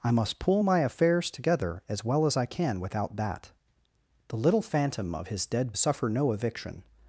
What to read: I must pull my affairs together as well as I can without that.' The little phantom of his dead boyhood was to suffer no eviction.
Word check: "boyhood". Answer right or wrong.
wrong